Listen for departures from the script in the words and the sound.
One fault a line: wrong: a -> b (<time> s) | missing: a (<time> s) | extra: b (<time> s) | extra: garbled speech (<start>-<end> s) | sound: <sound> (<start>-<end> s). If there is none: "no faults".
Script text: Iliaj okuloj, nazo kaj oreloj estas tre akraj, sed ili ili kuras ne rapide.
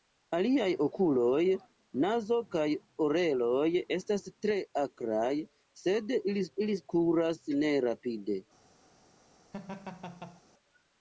sound: laugh (9.5-10.4 s)